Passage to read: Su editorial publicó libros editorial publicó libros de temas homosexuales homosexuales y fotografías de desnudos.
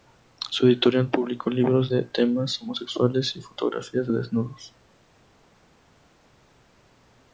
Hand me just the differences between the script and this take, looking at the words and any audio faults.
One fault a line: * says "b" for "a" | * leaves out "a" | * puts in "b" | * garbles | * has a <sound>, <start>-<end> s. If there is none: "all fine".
* leaves out "editorial publicó libros"
* leaves out "homosexuales"